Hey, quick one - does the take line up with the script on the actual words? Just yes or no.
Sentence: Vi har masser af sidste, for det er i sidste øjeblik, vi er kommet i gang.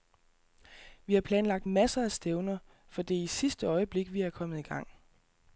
no